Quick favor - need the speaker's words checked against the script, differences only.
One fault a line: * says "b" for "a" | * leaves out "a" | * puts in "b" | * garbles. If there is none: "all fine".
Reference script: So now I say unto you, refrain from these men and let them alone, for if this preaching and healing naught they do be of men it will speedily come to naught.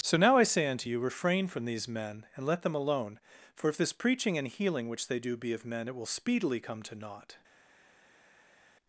* says "which" for "naught"